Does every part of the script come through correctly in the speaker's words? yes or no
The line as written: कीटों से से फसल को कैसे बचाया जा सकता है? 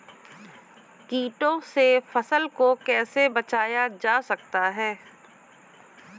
no